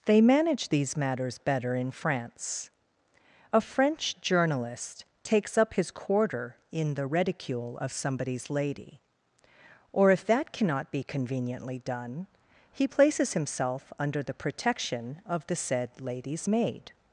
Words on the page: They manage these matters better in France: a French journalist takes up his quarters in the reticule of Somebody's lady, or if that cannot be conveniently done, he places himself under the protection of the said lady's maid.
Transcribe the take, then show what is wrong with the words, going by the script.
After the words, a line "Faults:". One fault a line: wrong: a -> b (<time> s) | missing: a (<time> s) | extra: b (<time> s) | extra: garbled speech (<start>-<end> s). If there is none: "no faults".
They manage these matters better in France: a French journalist takes up his quarter in the reticule of Somebody's lady, or if that cannot be conveniently done, he places himself under the protection of the said lady's maid.
Faults:
wrong: quarters -> quarter (5.9 s)